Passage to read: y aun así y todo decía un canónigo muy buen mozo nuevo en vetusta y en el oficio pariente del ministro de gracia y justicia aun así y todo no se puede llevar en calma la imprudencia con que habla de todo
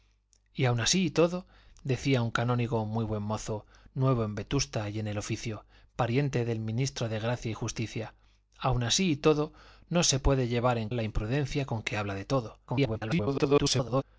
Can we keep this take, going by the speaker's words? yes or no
no